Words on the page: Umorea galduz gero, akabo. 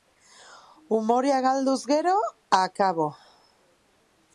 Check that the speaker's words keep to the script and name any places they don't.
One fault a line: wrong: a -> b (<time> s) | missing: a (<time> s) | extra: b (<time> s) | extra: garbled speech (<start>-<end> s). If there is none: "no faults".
no faults